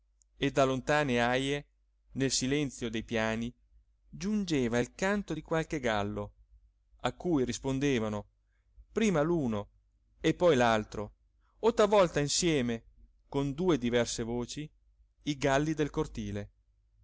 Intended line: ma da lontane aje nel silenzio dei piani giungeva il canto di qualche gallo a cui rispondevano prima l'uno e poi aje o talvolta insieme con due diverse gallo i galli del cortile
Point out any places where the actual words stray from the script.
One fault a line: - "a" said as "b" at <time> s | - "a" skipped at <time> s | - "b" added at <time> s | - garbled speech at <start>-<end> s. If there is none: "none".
- "ma" said as "e" at 0.3 s
- "aje" said as "l'altro" at 10.5 s
- "gallo" said as "voci" at 14.2 s